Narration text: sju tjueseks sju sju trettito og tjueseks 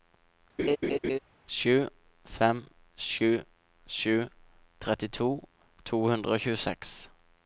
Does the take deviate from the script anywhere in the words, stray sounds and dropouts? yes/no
yes